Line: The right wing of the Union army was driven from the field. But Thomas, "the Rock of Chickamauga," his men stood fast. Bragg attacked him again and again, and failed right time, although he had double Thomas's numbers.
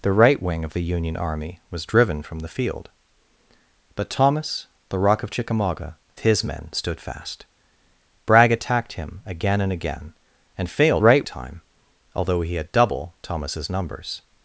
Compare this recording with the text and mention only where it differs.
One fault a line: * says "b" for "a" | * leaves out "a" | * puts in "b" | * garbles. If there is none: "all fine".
all fine